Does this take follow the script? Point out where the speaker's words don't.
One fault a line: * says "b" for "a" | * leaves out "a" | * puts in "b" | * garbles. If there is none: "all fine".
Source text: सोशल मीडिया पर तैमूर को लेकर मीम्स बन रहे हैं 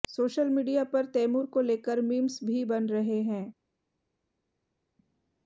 * puts in "भी"